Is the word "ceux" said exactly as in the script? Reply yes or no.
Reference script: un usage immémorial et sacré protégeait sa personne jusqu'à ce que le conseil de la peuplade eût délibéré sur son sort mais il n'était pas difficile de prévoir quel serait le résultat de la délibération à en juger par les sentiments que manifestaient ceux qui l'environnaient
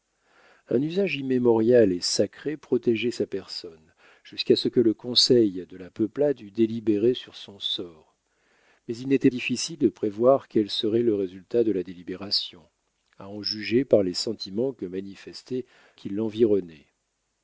no